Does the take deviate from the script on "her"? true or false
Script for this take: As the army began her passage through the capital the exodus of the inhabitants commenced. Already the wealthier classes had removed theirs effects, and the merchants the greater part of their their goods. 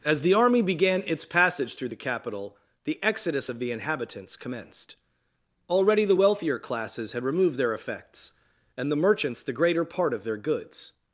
true